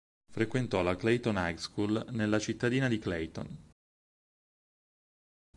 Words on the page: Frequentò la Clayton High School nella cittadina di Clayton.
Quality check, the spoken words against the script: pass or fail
pass